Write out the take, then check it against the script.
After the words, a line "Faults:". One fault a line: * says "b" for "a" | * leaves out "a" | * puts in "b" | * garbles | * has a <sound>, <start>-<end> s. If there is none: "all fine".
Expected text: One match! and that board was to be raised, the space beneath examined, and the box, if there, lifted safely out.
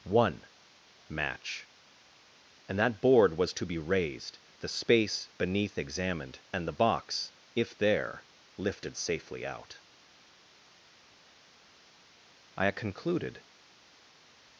One match! and that board was to be raised, the space beneath examined, and the box, if there, lifted safely out. I concluded
Faults:
* puts in "I concluded"